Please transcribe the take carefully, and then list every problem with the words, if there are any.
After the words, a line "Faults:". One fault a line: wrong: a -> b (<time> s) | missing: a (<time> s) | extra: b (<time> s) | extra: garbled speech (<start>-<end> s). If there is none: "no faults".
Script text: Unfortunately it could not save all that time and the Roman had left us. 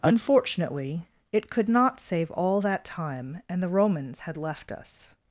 Unfortunately it could not save all that time and the Romans had left us.
Faults:
wrong: Roman -> Romans (3.7 s)